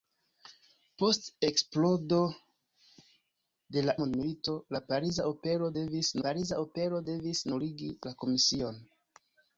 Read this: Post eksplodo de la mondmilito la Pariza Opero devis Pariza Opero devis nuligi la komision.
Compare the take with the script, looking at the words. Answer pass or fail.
pass